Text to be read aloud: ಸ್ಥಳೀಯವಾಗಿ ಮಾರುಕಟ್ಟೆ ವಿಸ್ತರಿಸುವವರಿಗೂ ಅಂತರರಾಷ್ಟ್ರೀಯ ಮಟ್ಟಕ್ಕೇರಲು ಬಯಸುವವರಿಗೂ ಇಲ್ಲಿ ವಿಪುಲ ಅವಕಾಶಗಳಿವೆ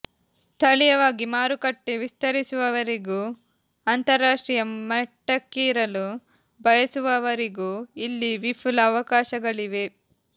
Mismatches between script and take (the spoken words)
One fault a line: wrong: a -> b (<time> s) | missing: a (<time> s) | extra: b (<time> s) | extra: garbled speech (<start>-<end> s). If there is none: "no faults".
no faults